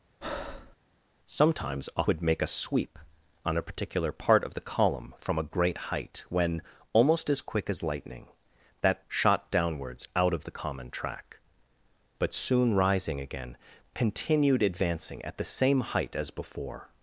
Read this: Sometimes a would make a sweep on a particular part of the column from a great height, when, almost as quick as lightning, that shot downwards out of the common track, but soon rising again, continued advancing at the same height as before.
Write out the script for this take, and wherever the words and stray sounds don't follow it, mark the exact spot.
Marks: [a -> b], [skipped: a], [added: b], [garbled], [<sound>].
[breath] Sometimes a would make a sweep on a particular part of the column from a great height, when, almost as quick as lightning, that shot downwards out of the common track, but soon rising again, continued advancing at the same height as before.